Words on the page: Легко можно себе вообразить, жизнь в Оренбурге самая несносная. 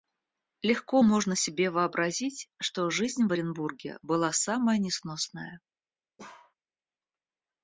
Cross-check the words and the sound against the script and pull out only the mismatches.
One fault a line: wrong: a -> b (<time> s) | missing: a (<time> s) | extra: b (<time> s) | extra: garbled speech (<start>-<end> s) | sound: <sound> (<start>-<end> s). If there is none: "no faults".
extra: что (2.6 s)
extra: была (4.0 s)
sound: bark (6.2-6.5 s)